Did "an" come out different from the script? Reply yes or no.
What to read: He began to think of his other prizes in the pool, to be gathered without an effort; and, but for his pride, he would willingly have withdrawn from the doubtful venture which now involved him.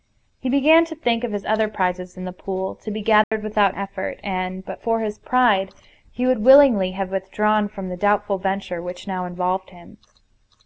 yes